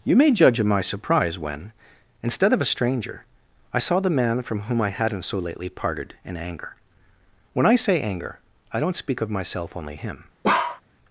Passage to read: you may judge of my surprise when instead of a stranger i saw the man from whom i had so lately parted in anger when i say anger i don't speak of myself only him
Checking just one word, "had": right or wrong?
wrong